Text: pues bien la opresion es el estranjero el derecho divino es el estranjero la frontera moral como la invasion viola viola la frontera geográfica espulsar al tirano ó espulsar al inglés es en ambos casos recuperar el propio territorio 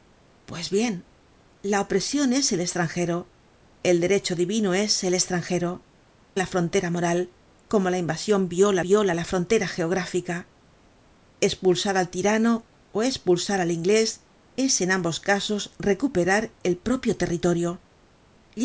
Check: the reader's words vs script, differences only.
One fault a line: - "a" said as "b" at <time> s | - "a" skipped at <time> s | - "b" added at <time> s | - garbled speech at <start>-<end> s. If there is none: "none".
none